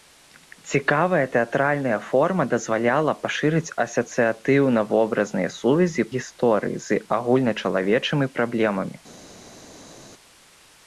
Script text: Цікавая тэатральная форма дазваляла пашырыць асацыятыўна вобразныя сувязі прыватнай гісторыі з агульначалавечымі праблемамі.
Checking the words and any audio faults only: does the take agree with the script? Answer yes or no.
no